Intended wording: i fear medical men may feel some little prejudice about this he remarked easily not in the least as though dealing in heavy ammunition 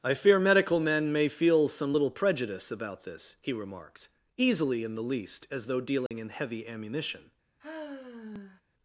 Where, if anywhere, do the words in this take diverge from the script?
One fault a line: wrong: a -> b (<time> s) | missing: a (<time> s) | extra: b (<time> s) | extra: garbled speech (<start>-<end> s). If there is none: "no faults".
missing: not (4.8 s)